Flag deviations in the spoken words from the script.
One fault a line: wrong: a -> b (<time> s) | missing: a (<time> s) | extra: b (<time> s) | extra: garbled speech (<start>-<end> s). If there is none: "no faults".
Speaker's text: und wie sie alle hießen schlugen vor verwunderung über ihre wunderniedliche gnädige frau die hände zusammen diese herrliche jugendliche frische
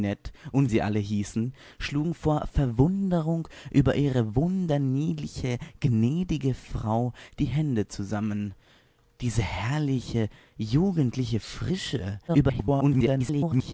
missing: wie (0.7 s)
extra: garbled speech (12.3-13.7 s)